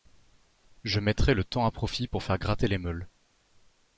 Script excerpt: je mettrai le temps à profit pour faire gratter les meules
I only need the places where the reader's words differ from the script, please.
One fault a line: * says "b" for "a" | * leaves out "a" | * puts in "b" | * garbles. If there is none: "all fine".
all fine